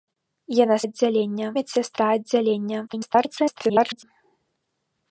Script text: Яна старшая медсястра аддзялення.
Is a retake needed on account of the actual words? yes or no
yes